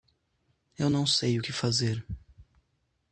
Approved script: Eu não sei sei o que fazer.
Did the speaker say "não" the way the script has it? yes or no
yes